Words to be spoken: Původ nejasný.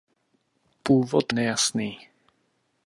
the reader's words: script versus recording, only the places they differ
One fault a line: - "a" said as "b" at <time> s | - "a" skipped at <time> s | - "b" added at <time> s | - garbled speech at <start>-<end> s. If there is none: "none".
none